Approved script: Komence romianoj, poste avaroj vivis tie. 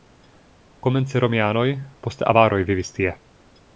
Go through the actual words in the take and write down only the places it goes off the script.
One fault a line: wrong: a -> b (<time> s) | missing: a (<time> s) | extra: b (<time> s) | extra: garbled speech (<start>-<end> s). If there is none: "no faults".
no faults